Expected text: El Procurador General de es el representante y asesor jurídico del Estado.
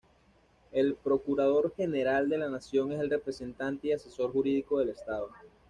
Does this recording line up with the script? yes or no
no